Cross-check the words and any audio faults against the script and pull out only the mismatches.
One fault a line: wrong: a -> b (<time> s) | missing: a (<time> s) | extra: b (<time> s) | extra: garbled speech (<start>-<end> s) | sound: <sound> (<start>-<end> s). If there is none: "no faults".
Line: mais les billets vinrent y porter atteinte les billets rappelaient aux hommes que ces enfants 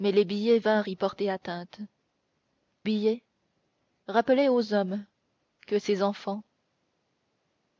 missing: les (1.8 s)